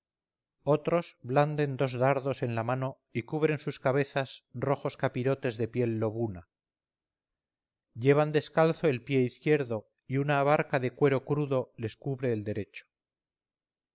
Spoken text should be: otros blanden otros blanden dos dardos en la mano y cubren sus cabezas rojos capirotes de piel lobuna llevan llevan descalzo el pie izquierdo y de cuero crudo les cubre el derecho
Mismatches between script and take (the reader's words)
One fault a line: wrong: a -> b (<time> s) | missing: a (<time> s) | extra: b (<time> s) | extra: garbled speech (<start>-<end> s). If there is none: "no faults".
missing: otros blanden (1.8 s)
missing: llevan (8.3 s)
extra: una abarca (10.2 s)